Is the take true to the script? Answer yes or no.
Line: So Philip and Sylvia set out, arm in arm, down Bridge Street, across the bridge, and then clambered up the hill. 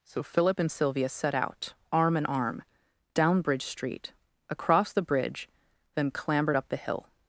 no